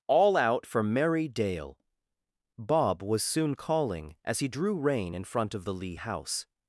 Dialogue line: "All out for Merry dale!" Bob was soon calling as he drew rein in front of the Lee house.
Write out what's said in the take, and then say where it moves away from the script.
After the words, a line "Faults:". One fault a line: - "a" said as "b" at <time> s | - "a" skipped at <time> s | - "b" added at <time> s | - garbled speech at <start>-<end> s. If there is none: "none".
"All out for Merry dale!" Bob was soon calling as he drew rein in front of the Lee house.
Faults:
none